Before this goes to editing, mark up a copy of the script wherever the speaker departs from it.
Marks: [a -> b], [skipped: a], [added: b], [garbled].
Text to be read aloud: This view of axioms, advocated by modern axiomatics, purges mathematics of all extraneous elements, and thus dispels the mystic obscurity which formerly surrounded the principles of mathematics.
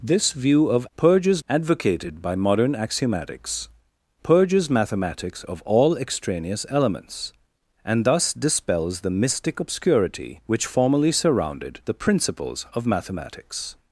This view of [axioms, -> purges] advocated by modern axiomatics, purges mathematics of all extraneous elements, and thus dispels the mystic obscurity which formerly surrounded the principles of mathematics.